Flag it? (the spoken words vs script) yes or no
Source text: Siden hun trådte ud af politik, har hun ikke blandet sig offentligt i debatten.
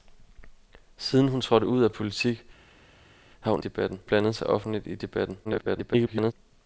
yes